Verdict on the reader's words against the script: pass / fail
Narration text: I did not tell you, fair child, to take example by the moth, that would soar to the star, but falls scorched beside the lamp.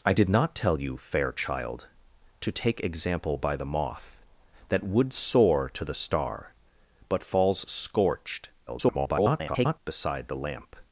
fail